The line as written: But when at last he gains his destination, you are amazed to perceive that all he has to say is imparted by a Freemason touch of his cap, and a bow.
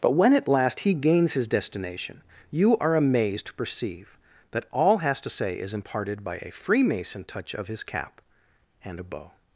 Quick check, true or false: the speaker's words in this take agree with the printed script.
false